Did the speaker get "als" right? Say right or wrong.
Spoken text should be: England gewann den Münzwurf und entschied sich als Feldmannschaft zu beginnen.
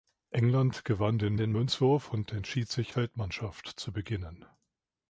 wrong